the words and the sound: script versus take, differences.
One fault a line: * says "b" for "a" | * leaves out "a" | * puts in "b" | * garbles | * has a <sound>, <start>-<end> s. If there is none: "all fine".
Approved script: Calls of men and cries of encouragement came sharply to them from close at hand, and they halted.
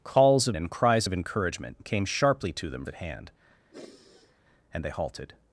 * leaves out "men"
* leaves out "from close"
* has a sigh, 3.7-4.4 s